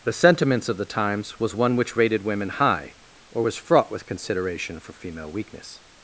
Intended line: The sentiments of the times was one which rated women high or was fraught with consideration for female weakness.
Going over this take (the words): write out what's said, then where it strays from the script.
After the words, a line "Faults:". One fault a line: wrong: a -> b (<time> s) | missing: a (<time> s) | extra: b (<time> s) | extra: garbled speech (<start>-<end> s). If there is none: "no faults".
The sentiments of the times was one which rated women high or was fraught with consideration for female weakness.
Faults:
no faults